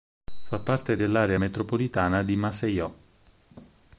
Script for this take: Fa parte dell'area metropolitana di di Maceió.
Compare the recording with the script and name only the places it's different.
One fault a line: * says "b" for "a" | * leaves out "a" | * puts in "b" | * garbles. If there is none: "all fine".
* leaves out "di"